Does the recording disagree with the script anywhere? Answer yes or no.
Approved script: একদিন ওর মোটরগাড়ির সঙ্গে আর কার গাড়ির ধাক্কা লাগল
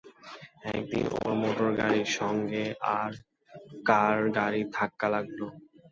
no